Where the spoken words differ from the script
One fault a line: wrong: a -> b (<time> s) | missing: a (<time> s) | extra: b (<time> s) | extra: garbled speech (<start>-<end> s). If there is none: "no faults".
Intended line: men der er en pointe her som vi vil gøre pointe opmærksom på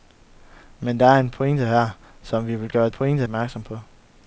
no faults